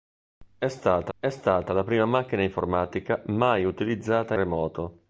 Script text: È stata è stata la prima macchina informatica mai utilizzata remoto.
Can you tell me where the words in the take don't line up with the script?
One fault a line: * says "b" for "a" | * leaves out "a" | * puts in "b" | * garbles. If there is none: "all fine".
all fine